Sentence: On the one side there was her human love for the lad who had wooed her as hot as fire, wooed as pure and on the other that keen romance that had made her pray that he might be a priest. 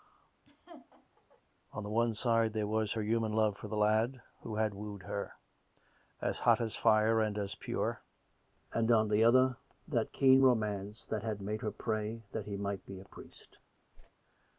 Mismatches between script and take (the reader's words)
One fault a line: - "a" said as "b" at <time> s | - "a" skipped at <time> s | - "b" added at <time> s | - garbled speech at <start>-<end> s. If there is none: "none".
- "wooed" said as "and" at 7.2 s